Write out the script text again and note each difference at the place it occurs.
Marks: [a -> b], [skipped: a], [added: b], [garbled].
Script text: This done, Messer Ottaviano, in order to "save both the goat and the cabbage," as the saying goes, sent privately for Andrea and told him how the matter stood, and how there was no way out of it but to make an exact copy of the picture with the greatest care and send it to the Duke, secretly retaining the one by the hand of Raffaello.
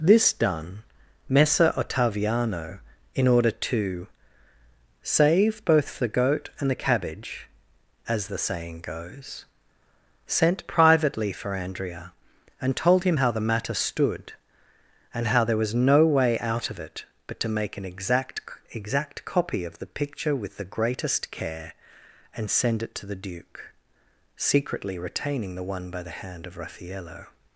This done, Messer Ottaviano, in order to "save both the goat and the cabbage," as the saying goes, sent privately for Andrea and told him how the matter stood, and how there was no way out of it but to make an exact [added: exact] copy of the picture with the greatest care and send it to the Duke, secretly retaining the one by the hand of Raffaello.